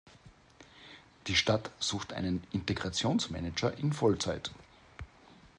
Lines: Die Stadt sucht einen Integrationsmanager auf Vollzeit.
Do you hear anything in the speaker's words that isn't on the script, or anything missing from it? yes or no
yes